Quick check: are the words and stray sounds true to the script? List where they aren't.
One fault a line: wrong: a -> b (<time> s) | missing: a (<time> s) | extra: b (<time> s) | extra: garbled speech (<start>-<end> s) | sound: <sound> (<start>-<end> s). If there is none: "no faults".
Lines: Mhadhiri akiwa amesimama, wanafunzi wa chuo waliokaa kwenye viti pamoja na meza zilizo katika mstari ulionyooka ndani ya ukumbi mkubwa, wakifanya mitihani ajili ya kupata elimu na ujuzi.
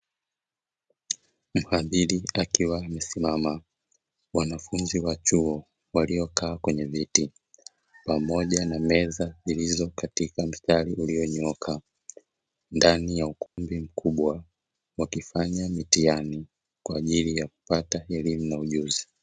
sound: dropout (13.5-13.6 s)
extra: kwa (16.8 s)